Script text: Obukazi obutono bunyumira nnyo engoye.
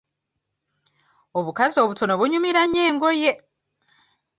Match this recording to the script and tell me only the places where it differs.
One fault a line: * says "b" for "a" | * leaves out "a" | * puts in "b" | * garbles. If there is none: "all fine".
all fine